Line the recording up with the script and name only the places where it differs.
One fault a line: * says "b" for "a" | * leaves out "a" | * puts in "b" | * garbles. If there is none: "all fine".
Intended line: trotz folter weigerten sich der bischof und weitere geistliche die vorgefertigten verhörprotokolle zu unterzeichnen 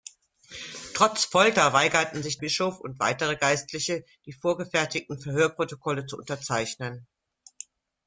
* leaves out "der"